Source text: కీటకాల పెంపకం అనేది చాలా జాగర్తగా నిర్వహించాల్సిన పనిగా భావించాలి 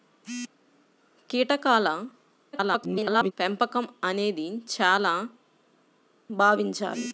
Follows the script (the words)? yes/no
no